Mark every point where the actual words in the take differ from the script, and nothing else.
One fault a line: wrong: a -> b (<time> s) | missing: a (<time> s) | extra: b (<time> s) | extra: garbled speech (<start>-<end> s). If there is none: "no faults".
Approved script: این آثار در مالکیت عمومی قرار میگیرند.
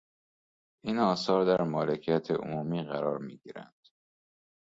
no faults